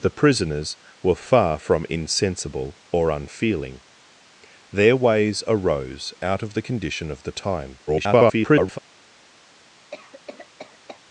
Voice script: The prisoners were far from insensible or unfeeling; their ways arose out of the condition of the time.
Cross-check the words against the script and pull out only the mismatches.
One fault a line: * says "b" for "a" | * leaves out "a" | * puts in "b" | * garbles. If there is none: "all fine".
* garbles